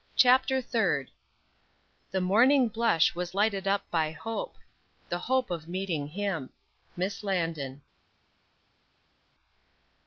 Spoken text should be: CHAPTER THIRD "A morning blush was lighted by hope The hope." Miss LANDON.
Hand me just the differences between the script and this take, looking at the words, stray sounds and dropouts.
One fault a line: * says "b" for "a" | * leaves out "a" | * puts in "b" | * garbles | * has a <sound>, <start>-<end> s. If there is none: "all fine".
* says "The" for "A"
* puts in "up"
* puts in "of meeting him"